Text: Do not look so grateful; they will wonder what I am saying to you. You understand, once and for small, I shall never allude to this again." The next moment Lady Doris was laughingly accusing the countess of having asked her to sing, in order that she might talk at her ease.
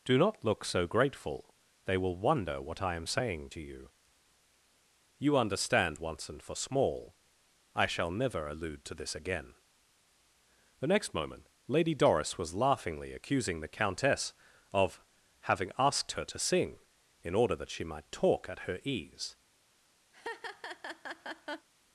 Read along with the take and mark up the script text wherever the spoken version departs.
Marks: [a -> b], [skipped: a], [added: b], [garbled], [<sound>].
Do not look so grateful; they will wonder what I am saying to you. You understand, once and for small, I shall never allude to this again." The next moment Lady Doris was laughingly accusing the countess of having asked her to sing, in order that she might talk at her ease. [laugh]